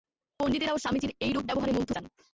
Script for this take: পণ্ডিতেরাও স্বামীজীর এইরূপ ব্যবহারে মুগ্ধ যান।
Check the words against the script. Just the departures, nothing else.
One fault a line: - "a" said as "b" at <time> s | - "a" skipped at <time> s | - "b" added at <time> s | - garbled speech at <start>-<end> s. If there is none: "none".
none